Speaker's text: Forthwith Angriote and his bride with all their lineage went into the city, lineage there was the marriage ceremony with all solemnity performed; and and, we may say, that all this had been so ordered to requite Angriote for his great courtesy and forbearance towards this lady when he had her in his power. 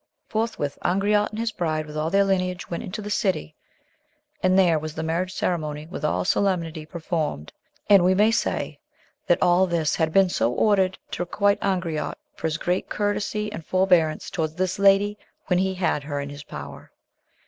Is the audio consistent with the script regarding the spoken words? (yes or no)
no